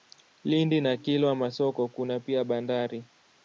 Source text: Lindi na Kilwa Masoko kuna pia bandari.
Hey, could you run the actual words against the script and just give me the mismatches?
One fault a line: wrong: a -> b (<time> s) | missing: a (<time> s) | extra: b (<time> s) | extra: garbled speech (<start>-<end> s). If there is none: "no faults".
no faults